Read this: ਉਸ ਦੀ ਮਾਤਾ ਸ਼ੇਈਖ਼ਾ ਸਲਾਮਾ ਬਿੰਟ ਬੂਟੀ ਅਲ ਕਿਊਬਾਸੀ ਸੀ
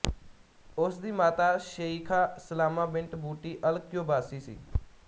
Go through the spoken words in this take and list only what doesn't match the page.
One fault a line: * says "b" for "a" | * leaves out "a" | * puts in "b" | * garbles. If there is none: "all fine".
all fine